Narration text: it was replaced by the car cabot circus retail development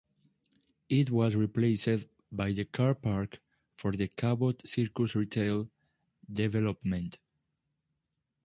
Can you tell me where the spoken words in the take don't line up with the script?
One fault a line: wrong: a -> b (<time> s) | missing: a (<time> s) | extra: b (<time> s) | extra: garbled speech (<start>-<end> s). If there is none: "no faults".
extra: park for the (3.0 s)